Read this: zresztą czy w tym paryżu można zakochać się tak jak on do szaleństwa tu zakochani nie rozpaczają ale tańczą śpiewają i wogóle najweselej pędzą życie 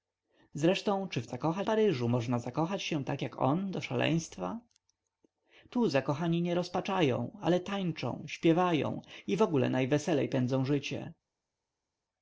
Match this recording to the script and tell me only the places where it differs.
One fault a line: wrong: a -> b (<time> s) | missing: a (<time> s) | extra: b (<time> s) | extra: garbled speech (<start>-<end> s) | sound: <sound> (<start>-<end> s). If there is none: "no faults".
wrong: tym -> zakochać (1.2 s)